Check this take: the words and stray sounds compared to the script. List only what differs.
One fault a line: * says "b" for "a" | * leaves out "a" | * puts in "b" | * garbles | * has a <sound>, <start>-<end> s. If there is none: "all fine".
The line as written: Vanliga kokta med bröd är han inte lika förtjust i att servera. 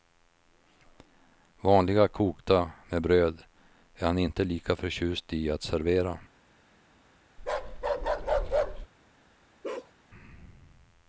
* has a bark, 7.4-8.9 s
* has a bark, 9.6-9.9 s